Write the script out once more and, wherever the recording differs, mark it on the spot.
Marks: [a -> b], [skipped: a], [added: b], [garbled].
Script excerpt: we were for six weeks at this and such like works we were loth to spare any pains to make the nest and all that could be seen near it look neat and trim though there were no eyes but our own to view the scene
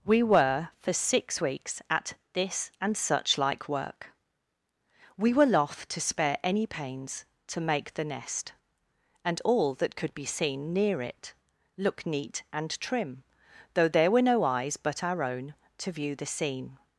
we were for six weeks at this and such like [works -> work] we were loth to spare any pains to make the nest and all that could be seen near it look neat and trim though there were no eyes but our own to view the scene